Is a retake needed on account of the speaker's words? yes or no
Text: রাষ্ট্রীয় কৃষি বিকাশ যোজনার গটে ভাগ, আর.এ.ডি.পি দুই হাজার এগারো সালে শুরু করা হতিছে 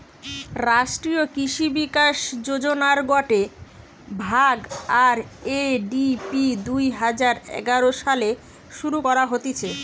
no